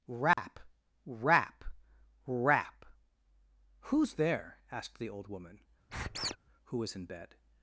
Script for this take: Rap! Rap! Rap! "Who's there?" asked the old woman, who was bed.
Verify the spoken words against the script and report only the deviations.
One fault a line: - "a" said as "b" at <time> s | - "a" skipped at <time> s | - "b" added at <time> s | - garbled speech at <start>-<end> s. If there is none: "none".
- "in" added at 6.9 s